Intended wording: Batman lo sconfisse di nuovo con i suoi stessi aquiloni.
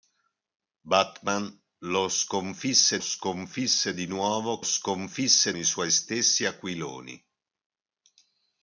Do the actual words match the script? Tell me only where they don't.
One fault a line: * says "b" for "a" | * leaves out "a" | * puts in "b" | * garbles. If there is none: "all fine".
* puts in "sconfisse"
* says "sconfisse" for "con"